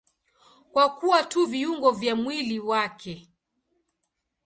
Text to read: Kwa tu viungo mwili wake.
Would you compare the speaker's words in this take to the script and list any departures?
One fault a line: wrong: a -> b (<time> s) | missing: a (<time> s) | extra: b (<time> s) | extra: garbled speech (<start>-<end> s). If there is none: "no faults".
extra: kuwa (0.9 s)
extra: vya (1.9 s)